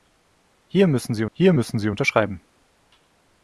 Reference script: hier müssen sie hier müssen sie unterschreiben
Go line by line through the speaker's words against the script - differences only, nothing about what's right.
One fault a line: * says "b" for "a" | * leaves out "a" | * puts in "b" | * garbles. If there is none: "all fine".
all fine